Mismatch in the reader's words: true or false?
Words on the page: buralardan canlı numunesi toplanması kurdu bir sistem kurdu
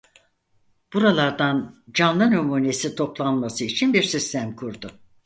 true